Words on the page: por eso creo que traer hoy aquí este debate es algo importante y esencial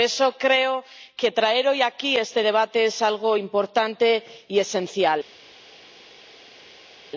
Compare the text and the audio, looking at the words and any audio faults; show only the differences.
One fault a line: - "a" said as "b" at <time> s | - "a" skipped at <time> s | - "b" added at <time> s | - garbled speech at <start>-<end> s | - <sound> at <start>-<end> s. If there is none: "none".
none